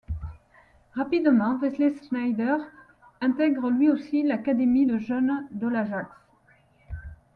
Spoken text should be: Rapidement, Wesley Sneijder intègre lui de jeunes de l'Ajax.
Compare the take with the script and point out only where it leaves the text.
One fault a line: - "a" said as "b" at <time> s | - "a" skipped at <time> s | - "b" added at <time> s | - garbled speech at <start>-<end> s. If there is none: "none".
- "aussi l'académie" added at 3.9 s